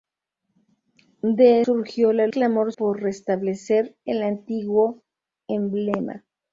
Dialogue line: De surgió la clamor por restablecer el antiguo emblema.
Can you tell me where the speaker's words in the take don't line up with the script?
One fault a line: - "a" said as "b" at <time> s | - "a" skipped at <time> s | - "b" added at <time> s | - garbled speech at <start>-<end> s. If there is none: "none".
none